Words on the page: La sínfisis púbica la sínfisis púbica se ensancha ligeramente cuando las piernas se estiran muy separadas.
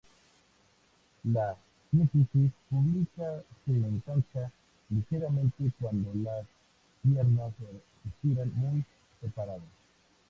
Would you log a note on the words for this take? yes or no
yes